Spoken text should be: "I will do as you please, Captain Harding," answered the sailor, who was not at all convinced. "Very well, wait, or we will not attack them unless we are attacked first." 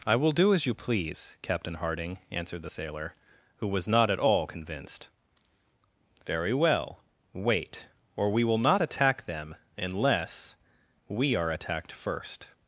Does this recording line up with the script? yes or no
yes